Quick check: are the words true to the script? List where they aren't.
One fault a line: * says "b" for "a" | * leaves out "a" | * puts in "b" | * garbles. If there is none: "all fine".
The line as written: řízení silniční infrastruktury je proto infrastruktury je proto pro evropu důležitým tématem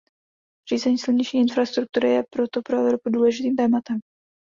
* leaves out "infrastruktury je proto"